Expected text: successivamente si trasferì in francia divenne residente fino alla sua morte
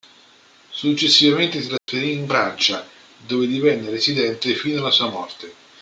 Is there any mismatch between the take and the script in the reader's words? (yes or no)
yes